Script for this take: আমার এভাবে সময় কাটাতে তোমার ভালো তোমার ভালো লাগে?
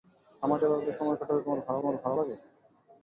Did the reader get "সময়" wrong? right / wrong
right